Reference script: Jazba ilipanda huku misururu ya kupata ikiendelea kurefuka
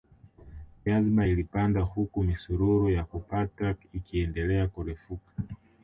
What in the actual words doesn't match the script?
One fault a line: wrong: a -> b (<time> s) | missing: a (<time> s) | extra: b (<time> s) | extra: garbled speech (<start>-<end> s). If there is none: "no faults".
no faults